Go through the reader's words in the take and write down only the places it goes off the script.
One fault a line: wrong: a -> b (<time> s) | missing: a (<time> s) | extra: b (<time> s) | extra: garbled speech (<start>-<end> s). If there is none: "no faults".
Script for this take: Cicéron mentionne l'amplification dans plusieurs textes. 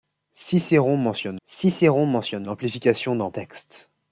extra: cicéron mentionne (1.5 s)
missing: plusieurs (3.3 s)